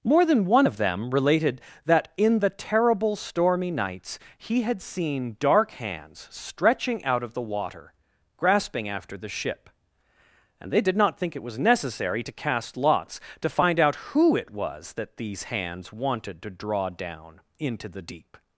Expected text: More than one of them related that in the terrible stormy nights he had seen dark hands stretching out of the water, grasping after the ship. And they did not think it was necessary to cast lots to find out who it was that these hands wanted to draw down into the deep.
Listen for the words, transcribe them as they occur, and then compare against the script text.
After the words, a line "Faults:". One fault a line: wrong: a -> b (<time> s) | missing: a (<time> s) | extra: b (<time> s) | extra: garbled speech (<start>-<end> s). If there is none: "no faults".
More than one of them related that in the terrible stormy nights he had seen dark hands stretching out of the water, grasping after the ship. And they did not think it was necessary to cast lots to find out who it was that these hands wanted to draw down into the deep.
Faults:
no faults